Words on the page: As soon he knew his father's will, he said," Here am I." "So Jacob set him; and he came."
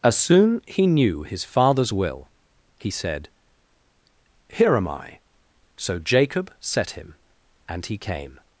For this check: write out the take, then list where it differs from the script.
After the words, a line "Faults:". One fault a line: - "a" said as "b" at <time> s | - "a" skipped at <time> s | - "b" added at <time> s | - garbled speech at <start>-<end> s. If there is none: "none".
As soon he knew his father's will, he said," Here am I." "So Jacob set him; and he came."
Faults:
none